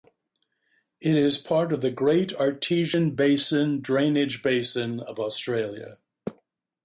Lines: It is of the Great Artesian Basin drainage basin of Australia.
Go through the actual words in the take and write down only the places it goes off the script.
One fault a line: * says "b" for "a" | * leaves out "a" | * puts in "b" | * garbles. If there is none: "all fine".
* puts in "part"